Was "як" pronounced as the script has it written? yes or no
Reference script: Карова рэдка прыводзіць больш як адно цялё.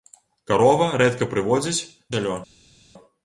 no